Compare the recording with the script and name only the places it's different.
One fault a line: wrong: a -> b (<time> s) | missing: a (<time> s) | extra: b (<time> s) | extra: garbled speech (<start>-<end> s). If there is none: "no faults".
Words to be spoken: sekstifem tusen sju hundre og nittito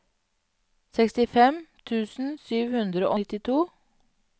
missing: og (3.1 s)